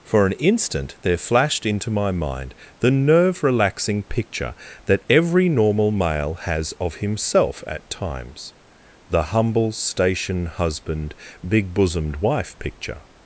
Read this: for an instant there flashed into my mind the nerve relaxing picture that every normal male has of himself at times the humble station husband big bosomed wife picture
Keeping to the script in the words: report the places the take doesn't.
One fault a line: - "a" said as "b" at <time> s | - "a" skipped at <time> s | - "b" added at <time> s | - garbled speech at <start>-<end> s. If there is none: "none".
none